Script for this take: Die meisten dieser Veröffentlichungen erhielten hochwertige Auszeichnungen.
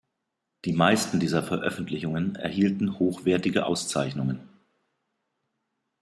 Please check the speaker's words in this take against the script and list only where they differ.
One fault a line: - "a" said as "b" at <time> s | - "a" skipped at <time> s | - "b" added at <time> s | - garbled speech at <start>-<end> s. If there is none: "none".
none